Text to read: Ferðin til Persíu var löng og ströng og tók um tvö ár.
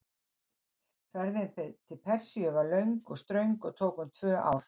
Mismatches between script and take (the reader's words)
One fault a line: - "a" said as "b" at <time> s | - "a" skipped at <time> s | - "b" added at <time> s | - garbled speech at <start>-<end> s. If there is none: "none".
none